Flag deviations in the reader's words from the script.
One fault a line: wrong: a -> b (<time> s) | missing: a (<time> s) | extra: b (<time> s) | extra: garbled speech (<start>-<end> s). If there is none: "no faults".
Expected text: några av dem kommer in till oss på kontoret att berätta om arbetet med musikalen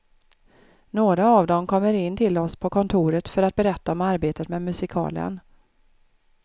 extra: för (3.3 s)